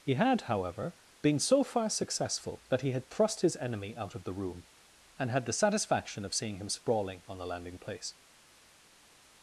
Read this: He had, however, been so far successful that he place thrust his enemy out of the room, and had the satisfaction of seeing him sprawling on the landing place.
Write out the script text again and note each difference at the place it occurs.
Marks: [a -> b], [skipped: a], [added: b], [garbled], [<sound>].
He had, however, been so far successful that he [place -> had] thrust his enemy out of the room, and had the satisfaction of seeing him sprawling on the landing place.